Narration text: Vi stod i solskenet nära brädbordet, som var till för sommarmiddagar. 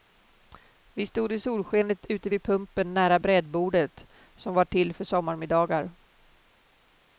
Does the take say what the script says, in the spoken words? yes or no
no